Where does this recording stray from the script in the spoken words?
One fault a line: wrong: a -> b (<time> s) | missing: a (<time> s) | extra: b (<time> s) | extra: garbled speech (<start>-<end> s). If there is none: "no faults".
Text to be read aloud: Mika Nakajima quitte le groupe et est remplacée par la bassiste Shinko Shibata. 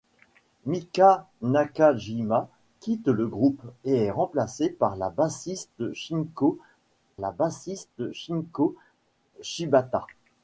extra: la bassiste Shinko (7.2 s)